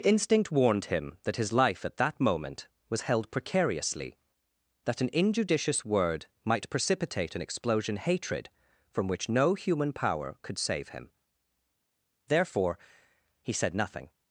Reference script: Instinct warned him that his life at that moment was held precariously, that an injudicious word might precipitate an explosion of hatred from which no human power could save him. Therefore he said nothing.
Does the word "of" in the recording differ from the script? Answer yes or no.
yes